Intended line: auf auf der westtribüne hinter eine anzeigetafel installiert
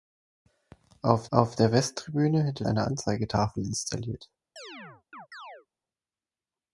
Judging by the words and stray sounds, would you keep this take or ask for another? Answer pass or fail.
fail